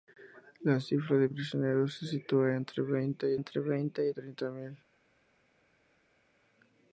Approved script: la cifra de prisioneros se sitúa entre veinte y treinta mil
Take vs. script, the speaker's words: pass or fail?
fail